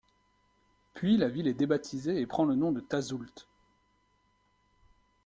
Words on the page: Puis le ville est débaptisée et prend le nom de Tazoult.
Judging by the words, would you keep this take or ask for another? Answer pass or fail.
fail